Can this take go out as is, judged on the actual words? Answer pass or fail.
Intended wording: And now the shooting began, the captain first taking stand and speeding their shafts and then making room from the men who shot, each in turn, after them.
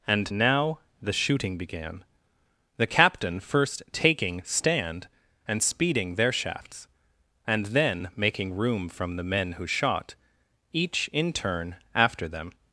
pass